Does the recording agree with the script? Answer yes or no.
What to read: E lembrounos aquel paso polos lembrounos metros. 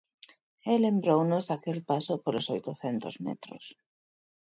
no